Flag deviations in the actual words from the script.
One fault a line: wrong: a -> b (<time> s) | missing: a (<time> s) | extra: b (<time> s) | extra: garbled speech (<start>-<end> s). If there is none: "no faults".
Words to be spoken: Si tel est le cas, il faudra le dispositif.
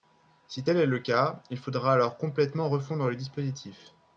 extra: alors complètement refondre (1.9 s)